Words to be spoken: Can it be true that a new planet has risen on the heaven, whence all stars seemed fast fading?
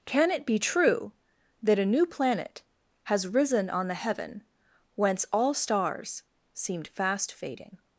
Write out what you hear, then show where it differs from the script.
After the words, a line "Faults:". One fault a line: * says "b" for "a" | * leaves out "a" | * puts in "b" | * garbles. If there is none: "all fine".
Can it be true that a new planet has risen on the heaven, whence all stars seemed fast fading?
Faults:
all fine